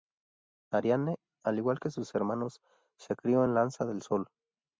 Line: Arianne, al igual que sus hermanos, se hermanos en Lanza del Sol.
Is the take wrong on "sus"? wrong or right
right